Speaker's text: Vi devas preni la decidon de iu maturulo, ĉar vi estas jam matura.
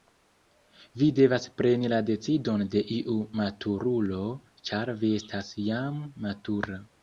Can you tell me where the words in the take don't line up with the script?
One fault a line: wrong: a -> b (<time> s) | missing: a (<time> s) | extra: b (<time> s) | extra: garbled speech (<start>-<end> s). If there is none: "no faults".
no faults